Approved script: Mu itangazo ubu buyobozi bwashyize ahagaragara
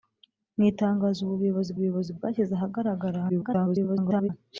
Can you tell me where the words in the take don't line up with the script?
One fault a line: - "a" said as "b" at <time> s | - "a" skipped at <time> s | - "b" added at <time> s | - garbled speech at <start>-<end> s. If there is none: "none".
- "buyobozi" added at 1.8 s
- garbled speech at 3.3-4.3 s